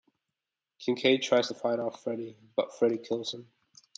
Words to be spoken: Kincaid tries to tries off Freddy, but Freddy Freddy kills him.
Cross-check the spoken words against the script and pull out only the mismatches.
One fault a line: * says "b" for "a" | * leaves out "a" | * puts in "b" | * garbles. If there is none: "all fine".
* says "fight" for "tries"
* leaves out "Freddy"